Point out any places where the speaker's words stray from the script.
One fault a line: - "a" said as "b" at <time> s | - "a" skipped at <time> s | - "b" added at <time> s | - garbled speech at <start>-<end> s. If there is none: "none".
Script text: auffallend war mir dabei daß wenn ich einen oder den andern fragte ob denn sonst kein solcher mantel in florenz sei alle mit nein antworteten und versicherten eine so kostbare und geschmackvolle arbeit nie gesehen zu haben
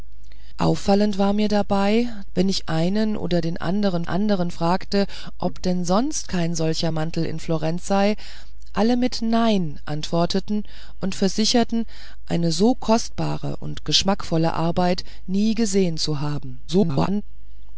- "daß" skipped at 2.1 s
- "andern" added at 4.0 s
- garbled speech at 16.7-17.2 s